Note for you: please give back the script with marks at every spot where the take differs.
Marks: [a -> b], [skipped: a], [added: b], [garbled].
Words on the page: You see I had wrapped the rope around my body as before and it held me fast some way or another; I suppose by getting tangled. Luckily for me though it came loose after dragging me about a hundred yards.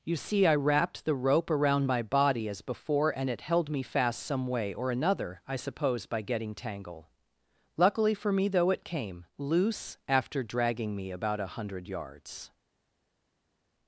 You see I [skipped: had] wrapped the rope around my body as before and it held me fast some way or another; I suppose by getting [tangled. -> tangle] Luckily for me though it came loose after dragging me about a hundred yards.